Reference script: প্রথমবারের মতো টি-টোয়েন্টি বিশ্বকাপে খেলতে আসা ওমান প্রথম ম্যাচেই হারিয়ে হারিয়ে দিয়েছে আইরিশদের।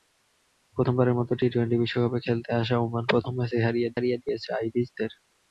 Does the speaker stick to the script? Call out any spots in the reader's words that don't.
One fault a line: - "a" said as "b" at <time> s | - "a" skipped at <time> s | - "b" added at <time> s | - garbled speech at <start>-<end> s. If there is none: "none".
none